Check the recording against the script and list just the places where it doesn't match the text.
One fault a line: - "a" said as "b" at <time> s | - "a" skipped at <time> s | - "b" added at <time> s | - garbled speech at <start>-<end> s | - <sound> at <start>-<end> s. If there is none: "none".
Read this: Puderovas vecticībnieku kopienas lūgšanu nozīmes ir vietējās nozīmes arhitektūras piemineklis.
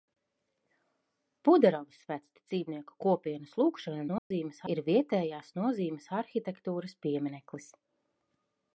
- dropout at 4.2-4.3 s